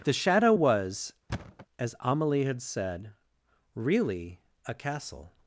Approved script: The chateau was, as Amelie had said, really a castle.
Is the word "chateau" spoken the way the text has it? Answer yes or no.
no